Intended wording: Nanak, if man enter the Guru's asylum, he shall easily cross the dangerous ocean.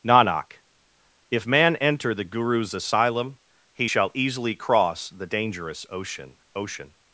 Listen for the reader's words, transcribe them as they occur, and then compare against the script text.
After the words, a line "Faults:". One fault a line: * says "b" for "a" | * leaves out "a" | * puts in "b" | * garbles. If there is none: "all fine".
Nanak, if man enter the Guru's asylum, he shall easily cross the dangerous ocean ocean.
Faults:
* puts in "ocean"